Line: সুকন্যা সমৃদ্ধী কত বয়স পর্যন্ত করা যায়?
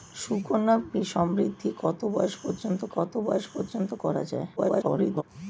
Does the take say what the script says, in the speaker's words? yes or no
no